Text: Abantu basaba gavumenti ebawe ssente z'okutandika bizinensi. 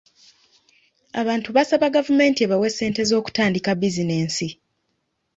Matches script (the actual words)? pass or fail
pass